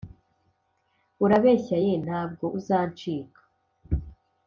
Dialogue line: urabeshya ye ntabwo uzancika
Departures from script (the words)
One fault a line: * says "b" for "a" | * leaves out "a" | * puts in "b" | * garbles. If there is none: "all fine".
all fine